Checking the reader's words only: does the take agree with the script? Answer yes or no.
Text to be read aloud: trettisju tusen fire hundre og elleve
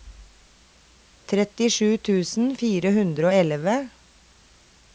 yes